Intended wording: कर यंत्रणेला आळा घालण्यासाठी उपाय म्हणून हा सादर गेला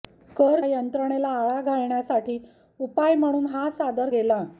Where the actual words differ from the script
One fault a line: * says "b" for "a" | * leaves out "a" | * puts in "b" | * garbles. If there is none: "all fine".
all fine